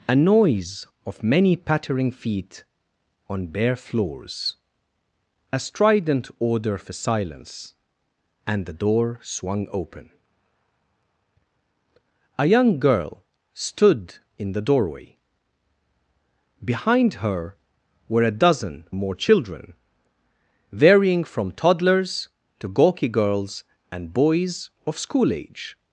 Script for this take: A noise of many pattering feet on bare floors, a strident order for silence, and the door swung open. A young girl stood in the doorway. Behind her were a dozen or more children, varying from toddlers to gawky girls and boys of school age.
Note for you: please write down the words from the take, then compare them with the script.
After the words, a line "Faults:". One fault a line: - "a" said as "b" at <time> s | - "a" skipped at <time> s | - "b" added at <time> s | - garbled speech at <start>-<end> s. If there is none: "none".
A noise of many pattering feet on bare floors, a strident order for silence, and the door swung open. A young girl stood in the doorway. Behind her were a dozen more children, varying from toddlers to gawky girls and boys of school age.
Faults:
- "or" skipped at 18.9 s